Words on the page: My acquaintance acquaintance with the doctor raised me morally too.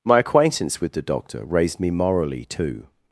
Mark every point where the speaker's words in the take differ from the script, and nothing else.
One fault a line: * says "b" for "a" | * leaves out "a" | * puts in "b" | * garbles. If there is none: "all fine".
* leaves out "acquaintance"